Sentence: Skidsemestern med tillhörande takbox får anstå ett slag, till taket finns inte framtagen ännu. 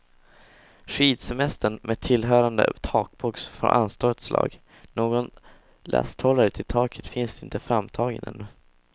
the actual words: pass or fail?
fail